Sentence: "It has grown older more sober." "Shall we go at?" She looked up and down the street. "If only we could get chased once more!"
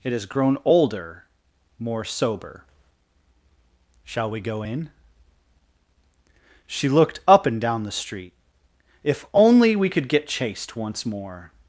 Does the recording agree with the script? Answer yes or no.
no